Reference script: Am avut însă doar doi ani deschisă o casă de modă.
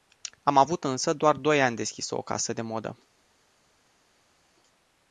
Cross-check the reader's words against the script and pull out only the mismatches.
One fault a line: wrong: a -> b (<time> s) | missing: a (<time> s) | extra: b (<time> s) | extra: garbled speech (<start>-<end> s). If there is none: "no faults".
no faults